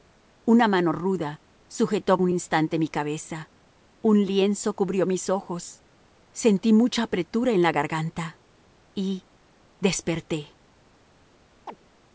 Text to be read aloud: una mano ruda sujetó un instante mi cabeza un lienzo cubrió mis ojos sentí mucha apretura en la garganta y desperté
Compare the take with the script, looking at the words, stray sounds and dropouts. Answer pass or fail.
fail